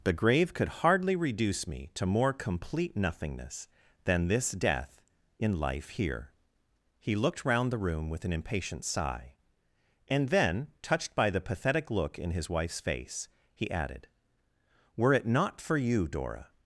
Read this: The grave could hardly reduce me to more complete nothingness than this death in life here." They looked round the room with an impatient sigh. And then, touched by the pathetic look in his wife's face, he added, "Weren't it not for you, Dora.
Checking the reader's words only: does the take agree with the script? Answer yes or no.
no